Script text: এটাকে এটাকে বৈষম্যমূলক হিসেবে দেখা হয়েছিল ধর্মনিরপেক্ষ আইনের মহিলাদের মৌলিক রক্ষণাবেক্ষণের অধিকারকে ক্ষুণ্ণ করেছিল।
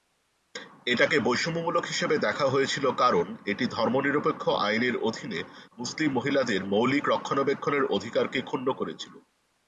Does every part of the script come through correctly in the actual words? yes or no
no